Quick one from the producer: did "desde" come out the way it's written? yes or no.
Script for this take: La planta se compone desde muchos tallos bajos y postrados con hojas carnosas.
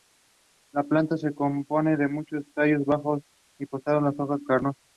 no